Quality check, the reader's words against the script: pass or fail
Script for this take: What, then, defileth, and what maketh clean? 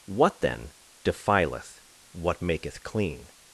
fail